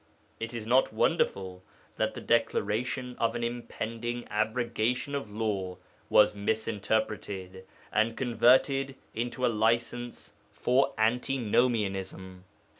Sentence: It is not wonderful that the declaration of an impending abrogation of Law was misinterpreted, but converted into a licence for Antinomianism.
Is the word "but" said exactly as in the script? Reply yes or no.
no